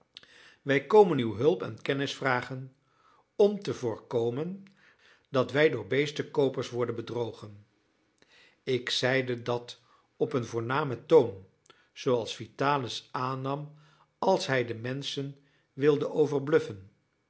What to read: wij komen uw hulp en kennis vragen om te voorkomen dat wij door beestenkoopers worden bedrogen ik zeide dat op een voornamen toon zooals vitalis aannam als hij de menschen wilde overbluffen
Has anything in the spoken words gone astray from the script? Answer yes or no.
no